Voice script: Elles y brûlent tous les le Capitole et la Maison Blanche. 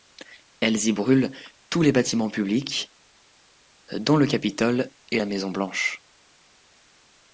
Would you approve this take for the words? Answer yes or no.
no